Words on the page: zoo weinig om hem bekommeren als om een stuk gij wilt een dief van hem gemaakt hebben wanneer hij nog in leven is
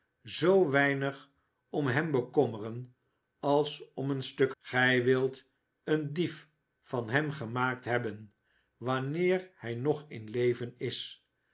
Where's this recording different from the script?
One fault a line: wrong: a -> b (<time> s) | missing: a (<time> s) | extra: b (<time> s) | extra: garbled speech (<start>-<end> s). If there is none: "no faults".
no faults